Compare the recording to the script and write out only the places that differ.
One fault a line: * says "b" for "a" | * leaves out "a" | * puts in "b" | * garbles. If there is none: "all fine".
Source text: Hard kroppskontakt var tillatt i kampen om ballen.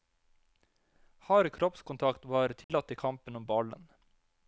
all fine